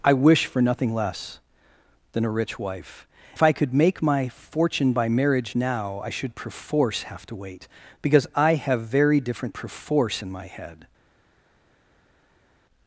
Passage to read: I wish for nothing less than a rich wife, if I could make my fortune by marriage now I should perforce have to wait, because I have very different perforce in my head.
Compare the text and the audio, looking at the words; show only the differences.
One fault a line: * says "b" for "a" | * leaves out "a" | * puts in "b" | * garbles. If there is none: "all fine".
all fine